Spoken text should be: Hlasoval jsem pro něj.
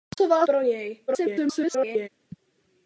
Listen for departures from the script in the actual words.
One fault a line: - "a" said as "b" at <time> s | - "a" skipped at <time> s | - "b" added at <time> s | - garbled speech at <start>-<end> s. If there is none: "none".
- "jsem" skipped at 0.5 s
- garbled speech at 1.1-2.1 s